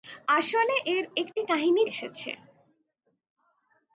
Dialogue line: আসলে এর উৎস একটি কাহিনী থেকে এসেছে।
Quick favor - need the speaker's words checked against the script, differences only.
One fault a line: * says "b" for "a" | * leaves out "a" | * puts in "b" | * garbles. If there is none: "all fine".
* leaves out "উৎস"
* leaves out "থেকে"